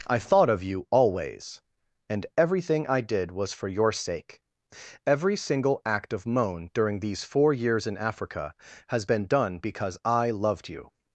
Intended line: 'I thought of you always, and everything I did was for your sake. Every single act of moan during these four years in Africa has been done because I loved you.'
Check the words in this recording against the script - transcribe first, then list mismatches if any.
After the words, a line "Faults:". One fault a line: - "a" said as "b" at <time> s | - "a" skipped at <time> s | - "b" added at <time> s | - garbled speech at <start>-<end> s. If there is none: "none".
'I thought of you always, and everything I did was for your sake. Every single act of moan during these four years in Africa has been done because I loved you.'
Faults:
none